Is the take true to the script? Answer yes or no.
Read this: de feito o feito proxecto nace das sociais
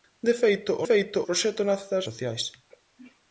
yes